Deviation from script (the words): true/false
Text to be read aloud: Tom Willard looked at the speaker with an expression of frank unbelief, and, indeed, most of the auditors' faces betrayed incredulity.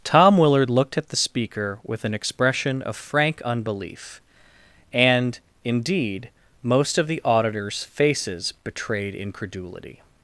false